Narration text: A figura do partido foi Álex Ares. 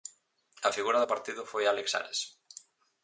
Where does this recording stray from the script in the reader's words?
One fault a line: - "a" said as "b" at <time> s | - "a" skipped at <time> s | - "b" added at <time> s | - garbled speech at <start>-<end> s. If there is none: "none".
none